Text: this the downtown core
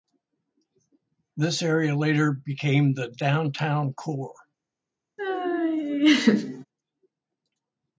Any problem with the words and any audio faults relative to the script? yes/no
yes